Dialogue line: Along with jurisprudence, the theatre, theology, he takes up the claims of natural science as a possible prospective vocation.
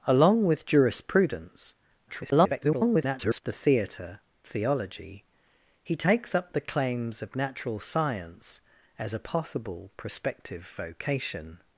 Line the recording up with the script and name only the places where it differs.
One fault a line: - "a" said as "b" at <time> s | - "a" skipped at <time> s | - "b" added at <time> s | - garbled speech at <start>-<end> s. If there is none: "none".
- garbled speech at 2.1-3.4 s